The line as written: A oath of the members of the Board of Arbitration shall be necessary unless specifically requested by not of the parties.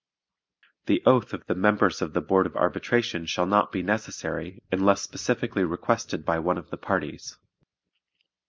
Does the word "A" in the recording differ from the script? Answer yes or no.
yes